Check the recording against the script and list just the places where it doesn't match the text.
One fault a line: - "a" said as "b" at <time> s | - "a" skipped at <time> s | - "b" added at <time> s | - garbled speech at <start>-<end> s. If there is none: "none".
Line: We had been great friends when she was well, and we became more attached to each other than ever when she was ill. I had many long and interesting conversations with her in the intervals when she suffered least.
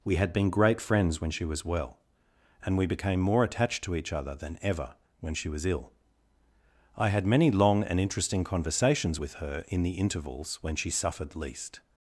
none